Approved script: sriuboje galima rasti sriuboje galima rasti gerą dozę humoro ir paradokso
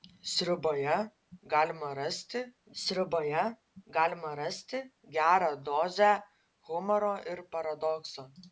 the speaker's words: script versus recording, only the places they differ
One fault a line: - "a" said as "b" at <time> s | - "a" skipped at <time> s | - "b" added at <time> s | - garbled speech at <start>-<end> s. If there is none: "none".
none